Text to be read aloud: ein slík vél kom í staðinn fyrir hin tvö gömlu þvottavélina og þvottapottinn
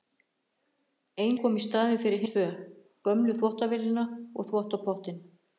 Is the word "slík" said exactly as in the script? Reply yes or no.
no